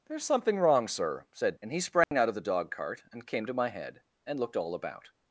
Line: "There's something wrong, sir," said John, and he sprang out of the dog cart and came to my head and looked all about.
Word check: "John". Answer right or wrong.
wrong